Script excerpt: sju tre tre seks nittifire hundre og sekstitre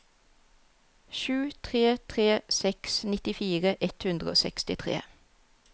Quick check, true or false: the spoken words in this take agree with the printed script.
false